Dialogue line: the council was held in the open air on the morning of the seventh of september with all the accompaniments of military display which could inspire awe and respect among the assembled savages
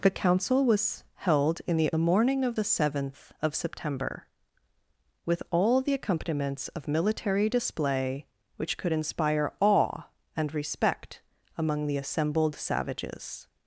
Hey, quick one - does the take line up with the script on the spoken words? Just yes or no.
no